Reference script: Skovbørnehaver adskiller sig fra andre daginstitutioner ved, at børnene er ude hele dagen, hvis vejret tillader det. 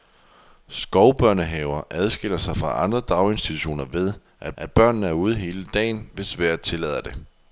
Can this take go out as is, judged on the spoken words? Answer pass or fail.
fail